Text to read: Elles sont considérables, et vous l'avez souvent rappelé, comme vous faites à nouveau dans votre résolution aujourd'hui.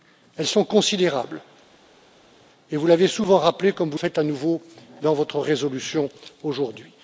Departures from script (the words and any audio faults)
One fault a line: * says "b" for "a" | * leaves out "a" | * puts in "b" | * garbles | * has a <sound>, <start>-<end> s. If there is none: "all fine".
all fine